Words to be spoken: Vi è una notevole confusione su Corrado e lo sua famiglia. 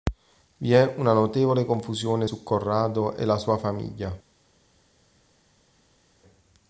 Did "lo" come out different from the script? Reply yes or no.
yes